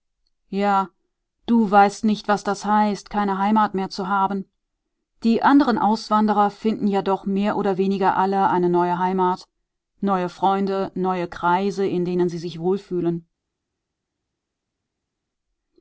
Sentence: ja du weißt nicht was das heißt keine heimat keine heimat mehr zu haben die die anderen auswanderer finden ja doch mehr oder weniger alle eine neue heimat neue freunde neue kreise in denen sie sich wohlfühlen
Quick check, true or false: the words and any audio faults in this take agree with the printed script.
false